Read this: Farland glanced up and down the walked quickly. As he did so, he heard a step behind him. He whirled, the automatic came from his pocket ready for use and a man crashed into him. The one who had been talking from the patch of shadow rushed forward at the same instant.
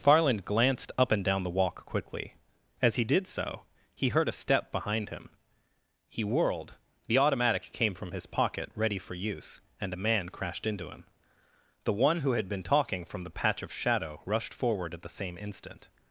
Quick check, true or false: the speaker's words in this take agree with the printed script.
false